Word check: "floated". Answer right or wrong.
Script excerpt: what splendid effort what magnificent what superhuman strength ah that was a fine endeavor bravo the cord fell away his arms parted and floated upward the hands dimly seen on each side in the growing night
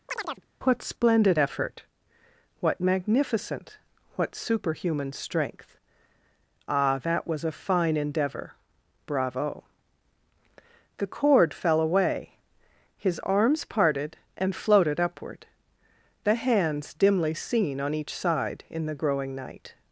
right